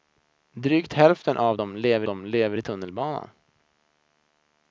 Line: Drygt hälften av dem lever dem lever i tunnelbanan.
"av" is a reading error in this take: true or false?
false